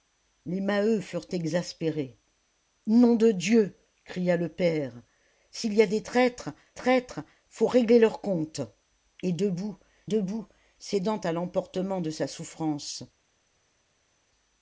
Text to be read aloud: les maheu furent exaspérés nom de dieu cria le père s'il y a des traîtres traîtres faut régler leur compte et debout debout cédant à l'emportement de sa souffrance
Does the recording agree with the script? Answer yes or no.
yes